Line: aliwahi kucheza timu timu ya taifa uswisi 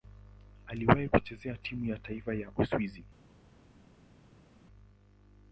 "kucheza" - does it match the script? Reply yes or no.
yes